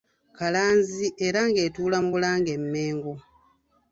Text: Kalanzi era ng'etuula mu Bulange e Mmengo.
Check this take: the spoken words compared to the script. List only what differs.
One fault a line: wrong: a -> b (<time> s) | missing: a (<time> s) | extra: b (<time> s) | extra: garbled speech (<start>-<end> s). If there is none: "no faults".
no faults